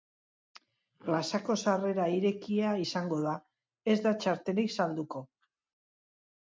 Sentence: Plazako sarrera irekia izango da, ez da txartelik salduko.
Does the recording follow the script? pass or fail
pass